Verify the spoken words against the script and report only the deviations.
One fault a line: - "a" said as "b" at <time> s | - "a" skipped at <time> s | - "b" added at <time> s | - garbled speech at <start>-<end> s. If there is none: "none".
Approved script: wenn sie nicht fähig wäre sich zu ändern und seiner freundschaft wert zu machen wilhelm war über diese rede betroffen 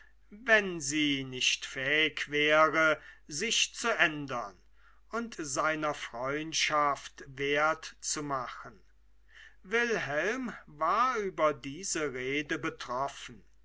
none